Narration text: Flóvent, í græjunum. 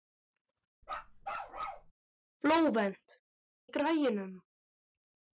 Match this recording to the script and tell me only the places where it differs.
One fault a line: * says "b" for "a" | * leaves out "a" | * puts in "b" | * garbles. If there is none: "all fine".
all fine